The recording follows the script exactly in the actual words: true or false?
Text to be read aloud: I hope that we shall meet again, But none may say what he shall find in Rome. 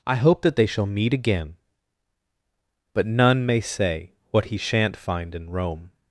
false